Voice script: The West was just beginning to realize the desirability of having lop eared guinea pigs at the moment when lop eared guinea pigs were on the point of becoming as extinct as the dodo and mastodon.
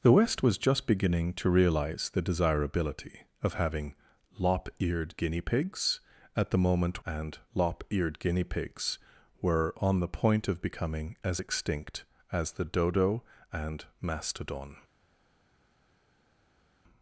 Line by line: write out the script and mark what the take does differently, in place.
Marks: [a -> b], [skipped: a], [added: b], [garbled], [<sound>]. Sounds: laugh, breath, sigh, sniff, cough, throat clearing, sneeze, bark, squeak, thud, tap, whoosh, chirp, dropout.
The West was just beginning to realize the desirability of having lop eared guinea pigs at the moment [when -> and] lop eared guinea pigs were on the point of becoming as extinct as the dodo and mastodon.